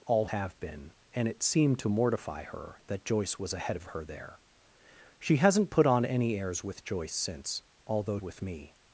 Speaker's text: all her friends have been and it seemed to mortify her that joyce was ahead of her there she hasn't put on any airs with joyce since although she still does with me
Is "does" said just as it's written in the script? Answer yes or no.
no